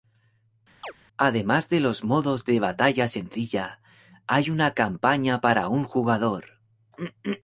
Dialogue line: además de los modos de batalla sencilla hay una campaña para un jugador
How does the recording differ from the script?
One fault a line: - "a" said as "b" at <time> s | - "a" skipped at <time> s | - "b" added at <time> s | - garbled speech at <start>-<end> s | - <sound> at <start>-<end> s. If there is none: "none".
- chirp at 0.8-0.9 s